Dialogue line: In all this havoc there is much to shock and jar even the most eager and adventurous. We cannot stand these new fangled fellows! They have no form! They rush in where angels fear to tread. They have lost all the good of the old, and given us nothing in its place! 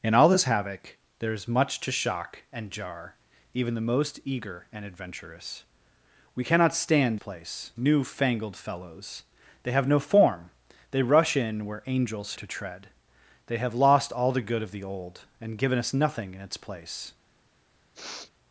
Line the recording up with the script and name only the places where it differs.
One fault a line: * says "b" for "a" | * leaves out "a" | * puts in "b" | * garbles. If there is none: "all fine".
* says "place" for "these"
* leaves out "fear"